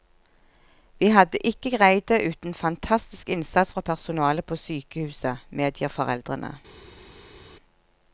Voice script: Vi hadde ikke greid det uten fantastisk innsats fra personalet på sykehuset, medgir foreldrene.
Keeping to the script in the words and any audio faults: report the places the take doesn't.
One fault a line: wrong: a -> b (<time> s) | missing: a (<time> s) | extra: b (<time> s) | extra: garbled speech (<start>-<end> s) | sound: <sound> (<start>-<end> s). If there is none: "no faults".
no faults